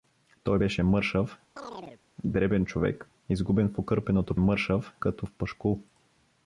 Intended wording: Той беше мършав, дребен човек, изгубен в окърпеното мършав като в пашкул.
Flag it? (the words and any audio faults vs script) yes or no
yes